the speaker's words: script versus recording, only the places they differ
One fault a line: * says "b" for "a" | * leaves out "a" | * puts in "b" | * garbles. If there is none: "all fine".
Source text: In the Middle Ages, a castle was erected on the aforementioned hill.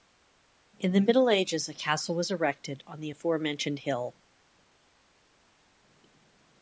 all fine